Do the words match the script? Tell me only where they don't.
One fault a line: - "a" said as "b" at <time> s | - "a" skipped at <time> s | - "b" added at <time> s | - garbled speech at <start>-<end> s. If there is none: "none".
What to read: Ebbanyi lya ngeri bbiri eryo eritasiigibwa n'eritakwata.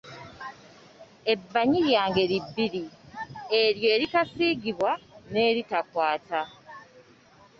none